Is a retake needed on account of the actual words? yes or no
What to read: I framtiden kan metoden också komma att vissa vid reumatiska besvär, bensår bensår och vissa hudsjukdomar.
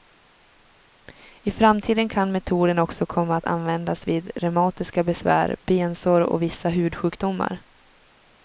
yes